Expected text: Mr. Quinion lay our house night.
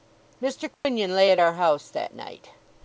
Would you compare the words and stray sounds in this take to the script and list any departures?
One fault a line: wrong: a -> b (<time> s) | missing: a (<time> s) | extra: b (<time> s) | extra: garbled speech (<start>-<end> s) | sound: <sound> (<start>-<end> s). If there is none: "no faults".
sound: dropout (0.7-0.8 s)
extra: at (1.3 s)
extra: that (1.9 s)